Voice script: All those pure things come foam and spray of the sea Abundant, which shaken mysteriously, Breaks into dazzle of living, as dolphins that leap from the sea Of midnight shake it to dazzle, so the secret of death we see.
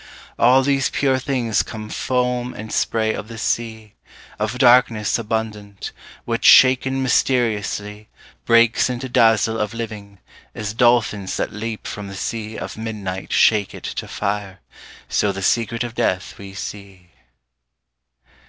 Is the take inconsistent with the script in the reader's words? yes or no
yes